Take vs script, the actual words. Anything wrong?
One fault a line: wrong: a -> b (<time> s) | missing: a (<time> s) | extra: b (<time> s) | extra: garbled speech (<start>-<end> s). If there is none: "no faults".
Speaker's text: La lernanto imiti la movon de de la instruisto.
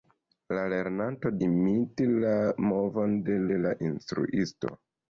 no faults